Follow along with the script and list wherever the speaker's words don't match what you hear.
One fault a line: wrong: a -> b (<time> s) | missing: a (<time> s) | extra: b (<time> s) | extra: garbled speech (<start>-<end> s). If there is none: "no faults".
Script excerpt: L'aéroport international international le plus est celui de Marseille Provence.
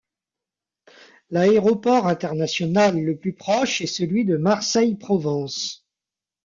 missing: international (3.0 s)
extra: proche (3.3 s)